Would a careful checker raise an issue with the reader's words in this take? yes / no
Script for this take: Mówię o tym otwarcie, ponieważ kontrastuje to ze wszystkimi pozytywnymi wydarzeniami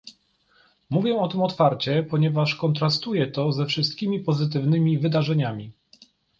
no